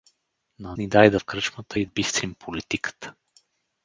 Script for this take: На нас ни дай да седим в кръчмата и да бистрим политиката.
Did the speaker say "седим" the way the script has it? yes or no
no